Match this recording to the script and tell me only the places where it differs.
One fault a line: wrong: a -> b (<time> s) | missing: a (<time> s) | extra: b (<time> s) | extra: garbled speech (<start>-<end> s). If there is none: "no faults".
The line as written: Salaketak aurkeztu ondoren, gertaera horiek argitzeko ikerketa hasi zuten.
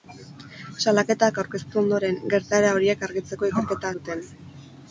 missing: hasi (4.0 s)